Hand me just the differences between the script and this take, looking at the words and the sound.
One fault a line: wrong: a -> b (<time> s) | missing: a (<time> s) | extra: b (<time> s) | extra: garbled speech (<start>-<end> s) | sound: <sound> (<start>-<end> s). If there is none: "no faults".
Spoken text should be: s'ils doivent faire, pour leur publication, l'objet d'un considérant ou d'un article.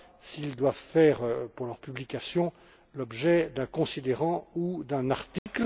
sound: dropout (5.4-5.5 s)